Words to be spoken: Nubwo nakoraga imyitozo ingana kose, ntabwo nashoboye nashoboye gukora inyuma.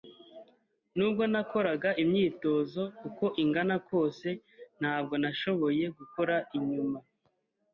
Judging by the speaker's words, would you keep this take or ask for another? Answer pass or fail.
fail